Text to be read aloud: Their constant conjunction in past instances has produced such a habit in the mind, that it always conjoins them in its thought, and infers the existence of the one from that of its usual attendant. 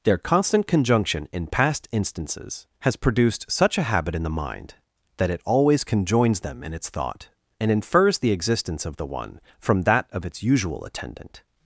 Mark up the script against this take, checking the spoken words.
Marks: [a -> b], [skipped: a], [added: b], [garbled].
Their constant conjunction in past instances has produced such a habit in the mind, that it always conjoins them in its thought, and infers the existence of the one from that of its usual attendant.